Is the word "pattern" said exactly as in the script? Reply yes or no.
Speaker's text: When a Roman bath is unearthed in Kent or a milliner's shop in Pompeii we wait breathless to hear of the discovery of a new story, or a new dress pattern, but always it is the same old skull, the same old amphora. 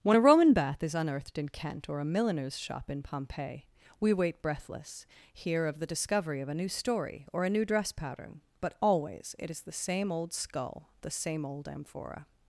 yes